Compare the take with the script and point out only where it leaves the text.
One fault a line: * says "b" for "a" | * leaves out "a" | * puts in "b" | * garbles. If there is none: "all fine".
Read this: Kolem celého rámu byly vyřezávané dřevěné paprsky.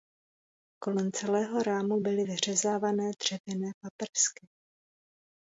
all fine